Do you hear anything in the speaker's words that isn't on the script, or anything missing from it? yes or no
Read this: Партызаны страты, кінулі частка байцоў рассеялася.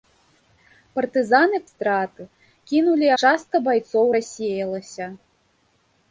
no